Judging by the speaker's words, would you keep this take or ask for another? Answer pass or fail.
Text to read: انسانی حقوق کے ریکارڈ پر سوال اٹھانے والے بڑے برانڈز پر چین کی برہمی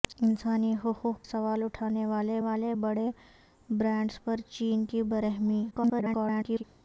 fail